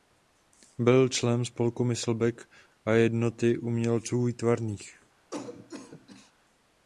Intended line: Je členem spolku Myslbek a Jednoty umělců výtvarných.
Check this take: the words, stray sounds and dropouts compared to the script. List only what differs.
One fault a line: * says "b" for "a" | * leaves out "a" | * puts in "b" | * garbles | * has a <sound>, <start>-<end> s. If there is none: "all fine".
* says "Byl" for "Je"
* has a cough, 5.3-6.3 s